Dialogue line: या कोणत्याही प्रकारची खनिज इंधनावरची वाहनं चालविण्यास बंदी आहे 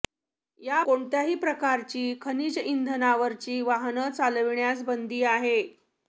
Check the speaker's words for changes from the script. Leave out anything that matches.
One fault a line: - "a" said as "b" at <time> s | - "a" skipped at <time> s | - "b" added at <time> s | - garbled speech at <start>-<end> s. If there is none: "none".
none